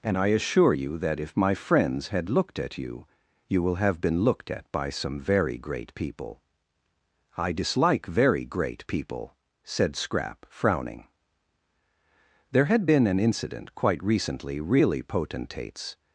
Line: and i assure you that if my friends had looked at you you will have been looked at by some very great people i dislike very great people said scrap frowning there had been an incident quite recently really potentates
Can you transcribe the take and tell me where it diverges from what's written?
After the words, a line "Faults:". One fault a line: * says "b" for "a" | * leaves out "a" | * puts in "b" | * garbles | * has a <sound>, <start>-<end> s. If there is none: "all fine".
and i assure you that if my friends had looked at you you will have been looked at by some very great people i dislike very great people said scrap frowning there had been an incident quite recently really potentates
Faults:
all fine